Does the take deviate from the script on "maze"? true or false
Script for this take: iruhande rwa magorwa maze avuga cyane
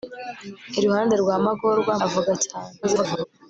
true